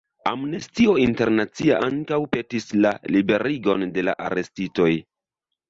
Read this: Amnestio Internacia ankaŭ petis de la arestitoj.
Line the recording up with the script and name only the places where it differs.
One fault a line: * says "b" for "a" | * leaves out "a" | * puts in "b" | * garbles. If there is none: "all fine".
* puts in "la liberigon"